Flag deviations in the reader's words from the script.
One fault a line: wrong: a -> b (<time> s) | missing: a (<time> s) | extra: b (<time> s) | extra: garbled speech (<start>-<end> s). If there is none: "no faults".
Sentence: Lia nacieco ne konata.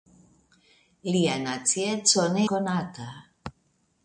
no faults